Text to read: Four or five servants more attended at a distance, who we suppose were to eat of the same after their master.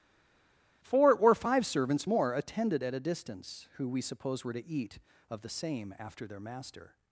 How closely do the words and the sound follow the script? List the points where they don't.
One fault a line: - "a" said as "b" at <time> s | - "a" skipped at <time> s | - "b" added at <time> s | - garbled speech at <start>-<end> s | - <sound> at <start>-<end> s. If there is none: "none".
none